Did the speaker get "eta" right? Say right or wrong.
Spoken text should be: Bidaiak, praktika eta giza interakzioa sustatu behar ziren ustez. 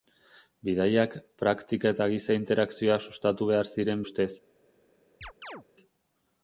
right